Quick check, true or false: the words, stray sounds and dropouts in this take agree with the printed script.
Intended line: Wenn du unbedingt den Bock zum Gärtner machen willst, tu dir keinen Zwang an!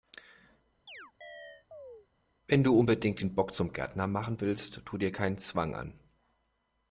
false